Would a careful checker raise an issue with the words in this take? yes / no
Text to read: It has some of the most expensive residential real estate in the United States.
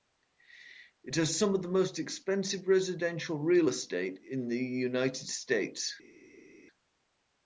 no